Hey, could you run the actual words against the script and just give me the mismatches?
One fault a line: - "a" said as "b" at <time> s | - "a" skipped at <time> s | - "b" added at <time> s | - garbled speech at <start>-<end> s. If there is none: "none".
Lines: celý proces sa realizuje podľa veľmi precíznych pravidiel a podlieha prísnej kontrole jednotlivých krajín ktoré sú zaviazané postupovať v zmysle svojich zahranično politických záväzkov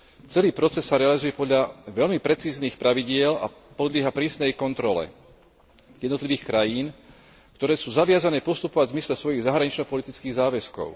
none